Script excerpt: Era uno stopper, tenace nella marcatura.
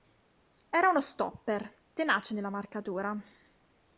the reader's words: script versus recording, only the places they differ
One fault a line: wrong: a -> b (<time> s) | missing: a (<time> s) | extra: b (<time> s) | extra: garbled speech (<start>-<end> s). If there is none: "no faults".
no faults